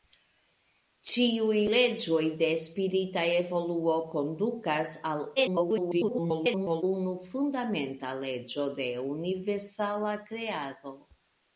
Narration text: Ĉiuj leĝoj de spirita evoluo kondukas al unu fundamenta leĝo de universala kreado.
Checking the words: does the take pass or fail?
fail